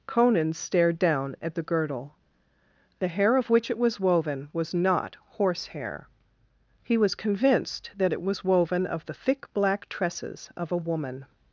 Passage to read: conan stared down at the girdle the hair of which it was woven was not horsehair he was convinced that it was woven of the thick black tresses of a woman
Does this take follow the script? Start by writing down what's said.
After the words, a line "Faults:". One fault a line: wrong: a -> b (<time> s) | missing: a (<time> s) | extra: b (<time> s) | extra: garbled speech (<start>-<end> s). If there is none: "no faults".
conan stared down at the girdle the hair of which it was woven was not horsehair he was convinced that it was woven of the thick black tresses of a woman
Faults:
no faults